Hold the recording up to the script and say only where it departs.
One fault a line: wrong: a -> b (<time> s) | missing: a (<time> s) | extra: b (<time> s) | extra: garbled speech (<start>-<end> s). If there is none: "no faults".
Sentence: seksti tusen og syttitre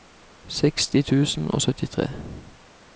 no faults